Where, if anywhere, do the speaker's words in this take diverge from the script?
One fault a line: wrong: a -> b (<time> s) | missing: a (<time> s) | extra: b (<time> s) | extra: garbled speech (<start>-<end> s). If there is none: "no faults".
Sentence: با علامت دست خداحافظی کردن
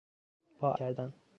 missing: علامت دست خداحافظی (0.8 s)